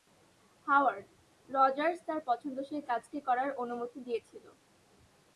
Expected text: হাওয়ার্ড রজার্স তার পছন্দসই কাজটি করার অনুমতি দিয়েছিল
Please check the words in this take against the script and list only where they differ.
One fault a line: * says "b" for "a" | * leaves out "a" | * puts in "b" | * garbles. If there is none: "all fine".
all fine